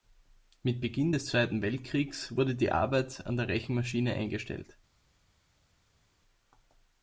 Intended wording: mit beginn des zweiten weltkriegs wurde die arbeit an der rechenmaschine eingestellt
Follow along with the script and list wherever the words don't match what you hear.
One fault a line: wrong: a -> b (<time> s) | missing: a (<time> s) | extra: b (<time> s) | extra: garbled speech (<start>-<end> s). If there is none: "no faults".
no faults